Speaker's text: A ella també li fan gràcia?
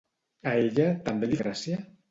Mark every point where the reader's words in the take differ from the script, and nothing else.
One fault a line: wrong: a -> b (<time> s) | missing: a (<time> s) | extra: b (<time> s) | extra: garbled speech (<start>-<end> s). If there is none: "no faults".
missing: fan (1.4 s)